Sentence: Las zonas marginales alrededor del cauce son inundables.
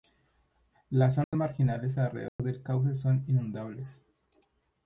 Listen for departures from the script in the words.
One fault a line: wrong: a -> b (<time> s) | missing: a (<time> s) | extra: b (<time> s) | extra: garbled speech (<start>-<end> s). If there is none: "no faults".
no faults